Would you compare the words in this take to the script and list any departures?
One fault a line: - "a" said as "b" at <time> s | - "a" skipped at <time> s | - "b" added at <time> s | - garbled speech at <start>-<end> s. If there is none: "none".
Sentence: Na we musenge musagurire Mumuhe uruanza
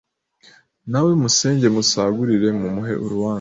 none